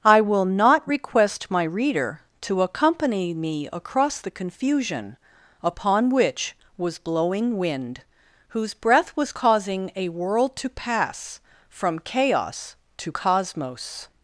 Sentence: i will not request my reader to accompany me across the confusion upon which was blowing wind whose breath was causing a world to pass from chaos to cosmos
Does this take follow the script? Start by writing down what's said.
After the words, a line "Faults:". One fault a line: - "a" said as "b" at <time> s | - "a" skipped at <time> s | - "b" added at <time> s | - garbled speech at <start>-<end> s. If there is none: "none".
i will not request my reader to accompany me across the confusion upon which was blowing wind whose breath was causing a world to pass from chaos to cosmos
Faults:
none